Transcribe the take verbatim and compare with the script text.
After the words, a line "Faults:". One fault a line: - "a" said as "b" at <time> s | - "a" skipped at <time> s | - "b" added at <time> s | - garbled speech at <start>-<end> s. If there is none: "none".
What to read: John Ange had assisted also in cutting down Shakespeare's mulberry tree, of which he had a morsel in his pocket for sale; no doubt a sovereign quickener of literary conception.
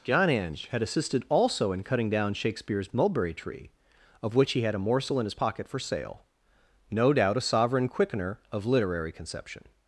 John Ange had assisted also in cutting down Shakespeare's mulberry tree, of which he had a morsel in his pocket for sale; no doubt a sovereign quickener of literary conception.
Faults:
none